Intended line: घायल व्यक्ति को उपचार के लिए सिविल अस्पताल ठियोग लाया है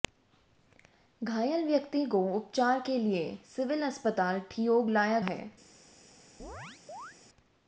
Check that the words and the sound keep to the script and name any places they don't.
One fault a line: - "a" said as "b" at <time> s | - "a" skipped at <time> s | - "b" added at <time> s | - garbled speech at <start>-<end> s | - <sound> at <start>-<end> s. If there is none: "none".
- chirp at 6.4-7.2 s